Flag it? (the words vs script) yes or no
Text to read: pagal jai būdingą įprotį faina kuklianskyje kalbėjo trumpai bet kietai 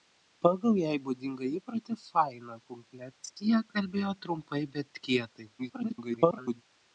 yes